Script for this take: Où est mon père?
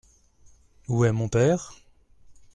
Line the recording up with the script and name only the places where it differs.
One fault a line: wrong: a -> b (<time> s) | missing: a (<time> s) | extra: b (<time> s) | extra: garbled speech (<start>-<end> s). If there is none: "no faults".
no faults